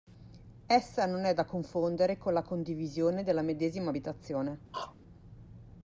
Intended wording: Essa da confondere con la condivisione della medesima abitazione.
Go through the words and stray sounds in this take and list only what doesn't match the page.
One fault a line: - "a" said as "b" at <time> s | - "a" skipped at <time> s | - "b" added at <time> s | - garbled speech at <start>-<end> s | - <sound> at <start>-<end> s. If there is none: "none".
- "non è" added at 1.1 s
- throat clearing at 4.7-5.0 s